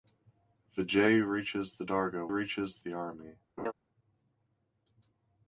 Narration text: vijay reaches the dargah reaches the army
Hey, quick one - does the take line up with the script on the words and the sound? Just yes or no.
no